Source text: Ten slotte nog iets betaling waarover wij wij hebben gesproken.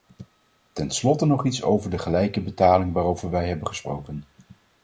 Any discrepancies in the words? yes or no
yes